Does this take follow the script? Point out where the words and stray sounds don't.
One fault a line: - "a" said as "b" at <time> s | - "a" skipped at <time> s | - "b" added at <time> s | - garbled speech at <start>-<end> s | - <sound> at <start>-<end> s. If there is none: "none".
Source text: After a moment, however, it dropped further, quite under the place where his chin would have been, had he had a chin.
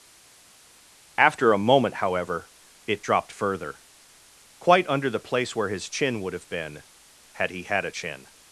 none